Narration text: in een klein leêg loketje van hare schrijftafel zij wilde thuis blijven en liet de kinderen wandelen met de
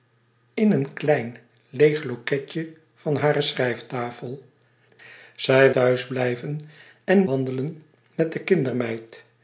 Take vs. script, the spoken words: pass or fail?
fail